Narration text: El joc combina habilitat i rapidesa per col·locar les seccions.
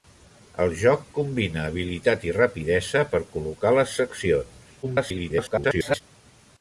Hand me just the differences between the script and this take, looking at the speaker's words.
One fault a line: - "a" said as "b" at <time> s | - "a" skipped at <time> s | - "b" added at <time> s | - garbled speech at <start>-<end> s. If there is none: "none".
- garbled speech at 4.8-6.0 s